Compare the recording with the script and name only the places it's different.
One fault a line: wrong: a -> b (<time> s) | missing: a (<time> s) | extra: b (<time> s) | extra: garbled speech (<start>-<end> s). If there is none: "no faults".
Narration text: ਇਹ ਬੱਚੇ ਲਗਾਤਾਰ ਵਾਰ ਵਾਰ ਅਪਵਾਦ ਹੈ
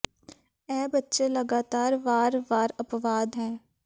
no faults